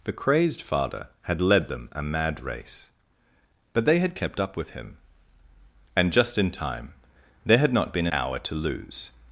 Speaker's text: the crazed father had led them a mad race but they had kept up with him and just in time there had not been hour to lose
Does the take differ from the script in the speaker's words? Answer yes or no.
no